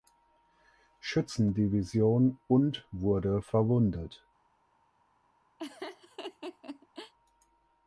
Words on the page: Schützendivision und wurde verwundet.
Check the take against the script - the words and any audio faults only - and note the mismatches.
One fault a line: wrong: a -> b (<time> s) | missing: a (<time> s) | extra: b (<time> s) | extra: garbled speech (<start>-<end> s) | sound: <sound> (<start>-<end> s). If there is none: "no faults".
sound: laugh (5.6-7.1 s)